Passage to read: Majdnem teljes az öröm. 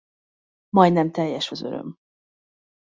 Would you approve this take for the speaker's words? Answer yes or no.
yes